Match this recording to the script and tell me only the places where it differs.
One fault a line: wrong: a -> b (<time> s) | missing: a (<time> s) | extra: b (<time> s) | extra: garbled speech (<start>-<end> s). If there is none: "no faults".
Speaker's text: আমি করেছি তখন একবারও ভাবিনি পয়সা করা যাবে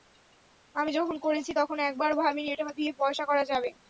extra: যখন (1.0 s)
extra: এটা দিয়ে (2.5 s)